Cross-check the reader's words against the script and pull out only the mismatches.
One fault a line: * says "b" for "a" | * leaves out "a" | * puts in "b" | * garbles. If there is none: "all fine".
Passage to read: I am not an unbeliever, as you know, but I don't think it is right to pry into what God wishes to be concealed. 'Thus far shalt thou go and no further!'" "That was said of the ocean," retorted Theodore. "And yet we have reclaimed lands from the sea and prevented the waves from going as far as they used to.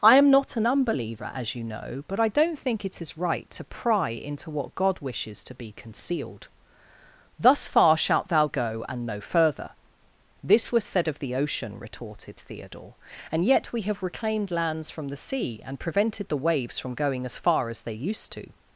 * says "This" for "That"